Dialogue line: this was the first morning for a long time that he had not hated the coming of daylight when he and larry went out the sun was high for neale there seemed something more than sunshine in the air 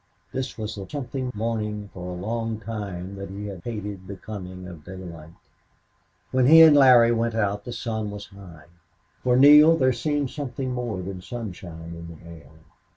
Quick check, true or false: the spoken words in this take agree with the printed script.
false